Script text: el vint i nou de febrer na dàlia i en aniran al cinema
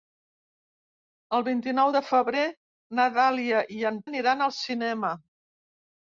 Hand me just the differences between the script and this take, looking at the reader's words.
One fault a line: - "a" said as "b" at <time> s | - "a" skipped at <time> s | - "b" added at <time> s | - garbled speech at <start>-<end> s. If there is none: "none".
none